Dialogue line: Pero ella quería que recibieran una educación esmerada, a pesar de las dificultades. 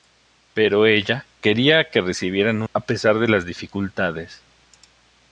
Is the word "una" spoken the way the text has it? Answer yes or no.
no